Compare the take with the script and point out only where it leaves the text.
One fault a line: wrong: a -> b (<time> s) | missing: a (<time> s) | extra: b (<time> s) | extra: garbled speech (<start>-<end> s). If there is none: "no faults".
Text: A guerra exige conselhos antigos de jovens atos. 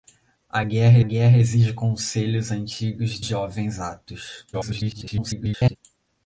extra: guerra (1.0 s)
missing: de (3.2 s)
extra: garbled speech (4.5-5.8 s)